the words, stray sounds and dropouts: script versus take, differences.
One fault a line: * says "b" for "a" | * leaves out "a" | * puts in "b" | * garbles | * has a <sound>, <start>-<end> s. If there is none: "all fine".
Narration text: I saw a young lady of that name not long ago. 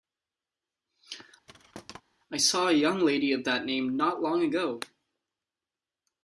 * has a thud, 1.5-2.0 s